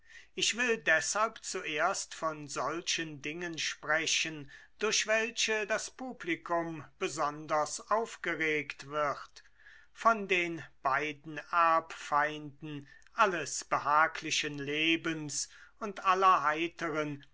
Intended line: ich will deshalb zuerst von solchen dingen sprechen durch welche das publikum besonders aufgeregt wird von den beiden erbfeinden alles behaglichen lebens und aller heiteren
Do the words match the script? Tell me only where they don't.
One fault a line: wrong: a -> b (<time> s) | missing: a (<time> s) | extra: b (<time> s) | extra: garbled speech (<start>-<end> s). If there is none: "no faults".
no faults